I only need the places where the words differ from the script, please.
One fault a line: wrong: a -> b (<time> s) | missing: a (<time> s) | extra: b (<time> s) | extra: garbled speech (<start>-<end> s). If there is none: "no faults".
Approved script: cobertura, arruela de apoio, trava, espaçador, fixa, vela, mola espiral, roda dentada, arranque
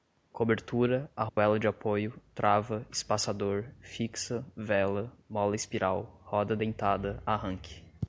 no faults